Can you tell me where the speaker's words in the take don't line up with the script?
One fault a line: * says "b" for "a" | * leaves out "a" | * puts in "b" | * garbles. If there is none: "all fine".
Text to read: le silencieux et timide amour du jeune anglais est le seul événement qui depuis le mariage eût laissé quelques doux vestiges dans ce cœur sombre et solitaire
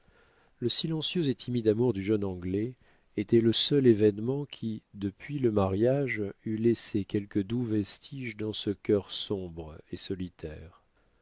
* says "était" for "est"